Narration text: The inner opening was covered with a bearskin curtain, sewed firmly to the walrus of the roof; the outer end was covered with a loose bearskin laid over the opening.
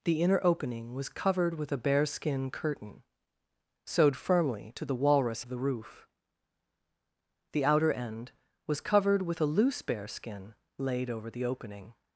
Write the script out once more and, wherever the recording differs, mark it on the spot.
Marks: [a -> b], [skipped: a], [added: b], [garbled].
The inner opening was covered with a bearskin curtain, sewed firmly to the walrus of the roof; the outer end was covered with a loose bearskin laid over the opening.